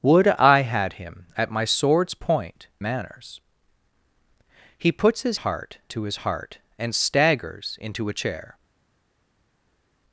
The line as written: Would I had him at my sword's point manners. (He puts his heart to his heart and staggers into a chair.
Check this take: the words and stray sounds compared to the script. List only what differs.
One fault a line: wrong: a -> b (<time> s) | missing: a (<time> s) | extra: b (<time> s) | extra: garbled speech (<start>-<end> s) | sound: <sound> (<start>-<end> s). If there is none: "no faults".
no faults